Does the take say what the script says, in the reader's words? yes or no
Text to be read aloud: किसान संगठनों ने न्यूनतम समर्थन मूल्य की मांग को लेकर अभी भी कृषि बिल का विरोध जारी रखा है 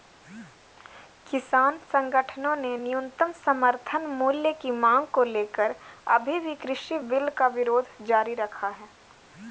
yes